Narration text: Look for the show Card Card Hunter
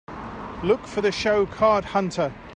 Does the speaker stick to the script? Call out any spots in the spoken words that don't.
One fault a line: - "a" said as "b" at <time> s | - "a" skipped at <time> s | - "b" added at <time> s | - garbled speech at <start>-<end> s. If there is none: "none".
- "Card" skipped at 1.8 s